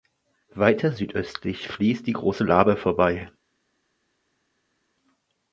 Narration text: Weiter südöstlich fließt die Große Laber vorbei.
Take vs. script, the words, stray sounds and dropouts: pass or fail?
pass